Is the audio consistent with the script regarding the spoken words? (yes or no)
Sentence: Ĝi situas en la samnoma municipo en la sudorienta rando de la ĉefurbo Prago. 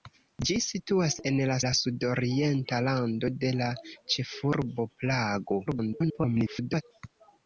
no